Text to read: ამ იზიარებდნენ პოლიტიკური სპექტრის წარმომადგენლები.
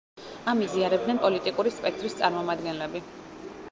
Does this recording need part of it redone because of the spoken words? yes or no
no